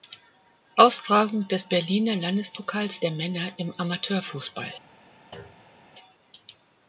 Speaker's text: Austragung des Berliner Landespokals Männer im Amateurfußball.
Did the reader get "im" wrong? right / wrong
right